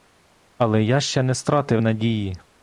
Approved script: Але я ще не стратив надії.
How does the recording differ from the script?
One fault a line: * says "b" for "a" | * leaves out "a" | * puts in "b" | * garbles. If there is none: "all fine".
all fine